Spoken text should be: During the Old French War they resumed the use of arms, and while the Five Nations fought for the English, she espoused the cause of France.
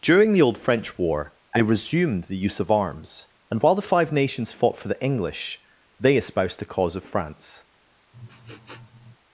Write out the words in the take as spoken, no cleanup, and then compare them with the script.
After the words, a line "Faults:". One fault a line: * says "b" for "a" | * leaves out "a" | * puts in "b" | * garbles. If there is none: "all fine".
During the Old French War they resumed the use of arms, and while the Five Nations fought for the English, they espoused the cause of France.
Faults:
* says "they" for "she"